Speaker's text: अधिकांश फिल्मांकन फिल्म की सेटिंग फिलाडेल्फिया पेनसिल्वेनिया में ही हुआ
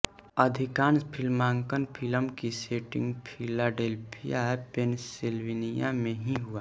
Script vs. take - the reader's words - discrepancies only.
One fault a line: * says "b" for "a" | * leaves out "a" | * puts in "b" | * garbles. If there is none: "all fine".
all fine